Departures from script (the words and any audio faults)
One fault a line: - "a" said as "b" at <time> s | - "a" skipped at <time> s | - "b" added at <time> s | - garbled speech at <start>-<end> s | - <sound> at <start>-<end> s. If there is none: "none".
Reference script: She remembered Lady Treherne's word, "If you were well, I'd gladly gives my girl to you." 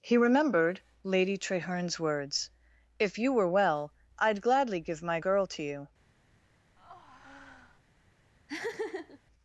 - "She" said as "He" at 0.0 s
- "word" said as "words" at 2.0 s
- "gives" said as "give" at 4.8 s
- breath at 6.8-7.8 s
- laugh at 8.5-9.2 s